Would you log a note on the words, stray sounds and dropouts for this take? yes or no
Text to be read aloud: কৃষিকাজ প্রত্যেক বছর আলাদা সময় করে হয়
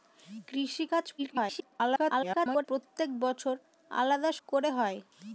yes